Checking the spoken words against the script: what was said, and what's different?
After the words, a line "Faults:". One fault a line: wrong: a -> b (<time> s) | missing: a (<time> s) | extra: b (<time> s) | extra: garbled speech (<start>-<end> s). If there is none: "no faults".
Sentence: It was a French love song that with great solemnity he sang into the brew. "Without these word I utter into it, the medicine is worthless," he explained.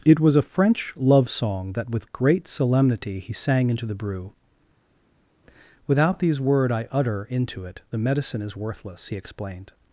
It was a French love song that with great solemnity he sang into the brew. "Without these word I utter into it, the medicine is worthless," he explained.
Faults:
no faults